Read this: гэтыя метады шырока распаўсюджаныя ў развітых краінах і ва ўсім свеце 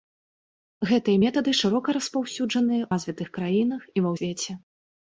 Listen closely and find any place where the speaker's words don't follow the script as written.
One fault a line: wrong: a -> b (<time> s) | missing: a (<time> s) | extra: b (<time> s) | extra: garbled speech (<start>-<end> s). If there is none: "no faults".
missing: ў (2.8 s)
missing: ўсім (4.2 s)